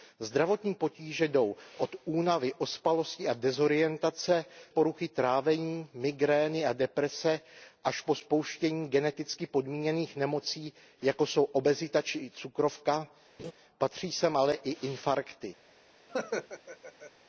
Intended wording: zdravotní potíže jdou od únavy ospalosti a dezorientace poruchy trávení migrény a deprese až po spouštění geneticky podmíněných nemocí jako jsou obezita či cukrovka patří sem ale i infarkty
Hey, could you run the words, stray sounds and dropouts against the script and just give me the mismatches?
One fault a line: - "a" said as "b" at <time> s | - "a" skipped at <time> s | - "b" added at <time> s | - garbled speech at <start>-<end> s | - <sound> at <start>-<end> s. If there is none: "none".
- laugh at 13.4-13.5 s
- laugh at 16.1-17.1 s